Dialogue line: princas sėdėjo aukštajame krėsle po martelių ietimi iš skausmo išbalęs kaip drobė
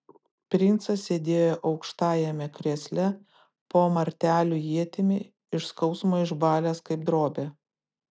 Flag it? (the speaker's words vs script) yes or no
no